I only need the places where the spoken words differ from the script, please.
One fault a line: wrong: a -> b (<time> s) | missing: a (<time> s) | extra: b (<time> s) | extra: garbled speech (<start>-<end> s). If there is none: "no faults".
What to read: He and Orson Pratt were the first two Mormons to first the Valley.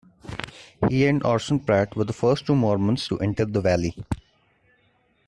wrong: first -> enter (3.2 s)